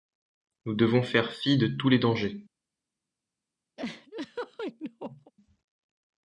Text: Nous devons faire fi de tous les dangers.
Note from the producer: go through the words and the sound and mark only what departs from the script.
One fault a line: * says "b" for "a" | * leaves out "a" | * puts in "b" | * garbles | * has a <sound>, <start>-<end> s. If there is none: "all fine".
* has a laugh, 3.8-5.3 s